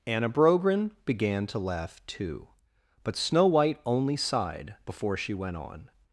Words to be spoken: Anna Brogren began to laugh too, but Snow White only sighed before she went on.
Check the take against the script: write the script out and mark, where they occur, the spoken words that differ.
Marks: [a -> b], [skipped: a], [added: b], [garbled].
Anna Brogren began to laugh too, but Snow White only sighed before she went on.